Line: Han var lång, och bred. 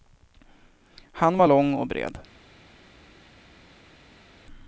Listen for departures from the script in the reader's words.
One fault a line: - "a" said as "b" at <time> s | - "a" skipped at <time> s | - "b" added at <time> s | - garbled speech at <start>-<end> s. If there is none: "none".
none